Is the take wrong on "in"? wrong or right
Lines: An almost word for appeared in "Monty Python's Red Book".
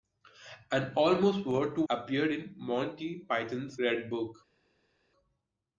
right